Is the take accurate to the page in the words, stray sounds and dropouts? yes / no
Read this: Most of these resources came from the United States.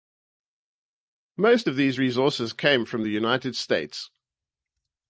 yes